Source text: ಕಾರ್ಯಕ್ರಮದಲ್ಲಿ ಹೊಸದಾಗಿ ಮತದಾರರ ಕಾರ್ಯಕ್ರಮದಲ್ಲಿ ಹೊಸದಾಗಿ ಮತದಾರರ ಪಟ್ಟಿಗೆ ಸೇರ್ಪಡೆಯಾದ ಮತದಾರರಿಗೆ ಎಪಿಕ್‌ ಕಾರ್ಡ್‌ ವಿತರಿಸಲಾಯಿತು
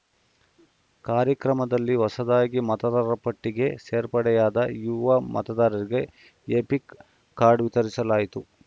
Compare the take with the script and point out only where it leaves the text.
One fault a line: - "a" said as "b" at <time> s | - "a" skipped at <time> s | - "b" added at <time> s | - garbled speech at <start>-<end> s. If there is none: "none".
- "ಕಾರ್ಯಕ್ರಮದಲ್ಲಿ ಹೊಸದಾಗಿ ಮತದಾರರ" skipped at 3.2 s
- "ಯುವ" added at 4.8 s